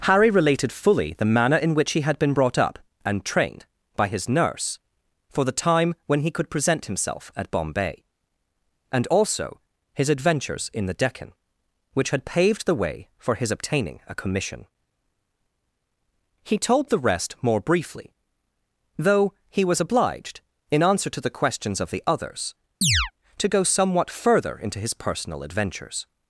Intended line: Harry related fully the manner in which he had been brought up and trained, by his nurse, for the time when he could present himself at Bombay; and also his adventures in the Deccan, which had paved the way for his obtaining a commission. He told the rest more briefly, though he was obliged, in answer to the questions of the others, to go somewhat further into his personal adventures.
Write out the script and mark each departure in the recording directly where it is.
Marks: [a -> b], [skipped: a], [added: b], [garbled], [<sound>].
Harry related fully the manner in which he had been brought up and trained, by his nurse, for the time when he could present himself at Bombay; and also his adventures in the Deccan, which had paved the way for his obtaining a commission. He told the rest more briefly, though he was obliged, in answer to the questions of the others, [chirp] to go somewhat further into his personal adventures.